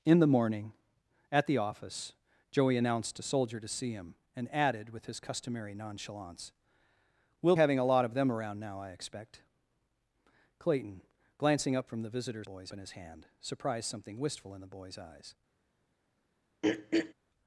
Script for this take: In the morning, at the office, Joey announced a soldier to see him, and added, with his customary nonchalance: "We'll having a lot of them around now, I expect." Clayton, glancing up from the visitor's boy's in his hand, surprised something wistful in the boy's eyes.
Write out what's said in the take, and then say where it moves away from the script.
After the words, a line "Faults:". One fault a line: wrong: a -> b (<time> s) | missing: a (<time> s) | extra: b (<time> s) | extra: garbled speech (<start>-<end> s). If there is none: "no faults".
In the morning, at the office, Joey announced a soldier to see him, and added, with his customary nonchalance: "We'll having a lot of them around now, I expect." Clayton, glancing up from the visitor's boy's in his hand, surprised something wistful in the boy's eyes.
Faults:
no faults